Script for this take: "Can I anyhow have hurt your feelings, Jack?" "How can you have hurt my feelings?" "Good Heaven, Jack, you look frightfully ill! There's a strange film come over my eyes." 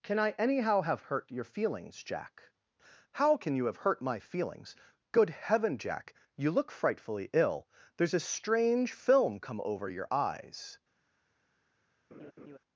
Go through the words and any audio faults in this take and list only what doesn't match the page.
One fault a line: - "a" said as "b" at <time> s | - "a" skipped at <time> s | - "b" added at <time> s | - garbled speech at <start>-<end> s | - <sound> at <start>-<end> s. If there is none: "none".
- "my" said as "your" at 9.9 s
- laugh at 12.1-12.6 s